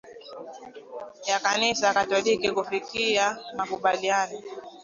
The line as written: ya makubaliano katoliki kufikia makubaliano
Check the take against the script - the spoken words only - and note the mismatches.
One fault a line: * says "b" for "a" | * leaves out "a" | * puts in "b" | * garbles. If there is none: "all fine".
* says "kanisa" for "makubaliano"